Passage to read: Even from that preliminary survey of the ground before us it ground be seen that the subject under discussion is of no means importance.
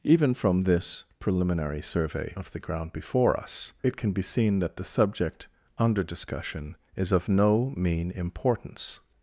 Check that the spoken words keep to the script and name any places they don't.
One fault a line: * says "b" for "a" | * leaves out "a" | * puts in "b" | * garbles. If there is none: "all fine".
* says "this" for "that"
* says "can" for "ground"
* says "mean" for "means"